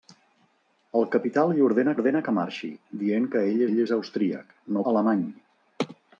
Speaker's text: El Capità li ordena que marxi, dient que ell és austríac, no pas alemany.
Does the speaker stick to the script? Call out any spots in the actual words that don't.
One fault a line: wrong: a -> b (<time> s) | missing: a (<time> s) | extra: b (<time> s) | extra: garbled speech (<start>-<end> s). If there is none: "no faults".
extra: ordena (1.9 s)
extra: ell (3.7 s)
missing: pas (4.8 s)